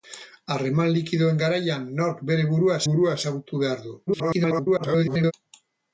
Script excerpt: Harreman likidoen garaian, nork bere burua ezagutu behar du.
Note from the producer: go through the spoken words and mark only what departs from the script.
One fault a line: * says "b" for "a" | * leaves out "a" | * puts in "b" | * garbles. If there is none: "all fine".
* puts in "burua"
* garbles